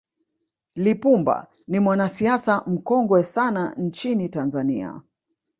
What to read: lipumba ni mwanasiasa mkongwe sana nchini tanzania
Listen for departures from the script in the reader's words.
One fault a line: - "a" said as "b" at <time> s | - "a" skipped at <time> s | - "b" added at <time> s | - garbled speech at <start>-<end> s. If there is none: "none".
none